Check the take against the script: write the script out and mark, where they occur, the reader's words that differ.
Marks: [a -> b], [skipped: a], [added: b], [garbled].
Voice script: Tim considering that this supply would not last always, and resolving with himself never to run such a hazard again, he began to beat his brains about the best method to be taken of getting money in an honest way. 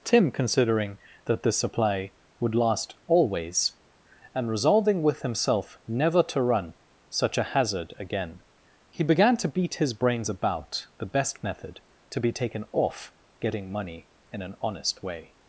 Tim considering that this supply would [skipped: not] last always, and resolving with himself never to run such a hazard again, he began to beat his brains about the best method to be taken [of -> off] getting money in an honest way.